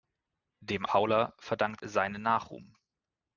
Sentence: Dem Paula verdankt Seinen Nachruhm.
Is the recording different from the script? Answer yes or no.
no